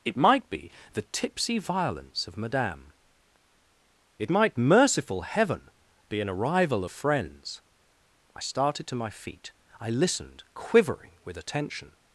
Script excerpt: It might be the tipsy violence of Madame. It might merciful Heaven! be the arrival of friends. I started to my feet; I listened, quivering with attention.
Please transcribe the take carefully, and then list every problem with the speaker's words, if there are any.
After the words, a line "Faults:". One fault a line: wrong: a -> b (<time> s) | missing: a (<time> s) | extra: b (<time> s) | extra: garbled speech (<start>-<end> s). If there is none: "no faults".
It might be the tipsy violence of Madame. It might merciful Heaven! be an arrival of friends. I started to my feet; I listened, quivering with attention.
Faults:
wrong: the -> an (6.2 s)